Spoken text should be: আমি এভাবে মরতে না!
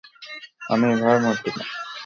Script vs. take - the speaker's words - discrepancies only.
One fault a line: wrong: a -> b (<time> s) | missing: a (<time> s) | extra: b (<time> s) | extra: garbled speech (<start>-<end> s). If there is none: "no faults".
no faults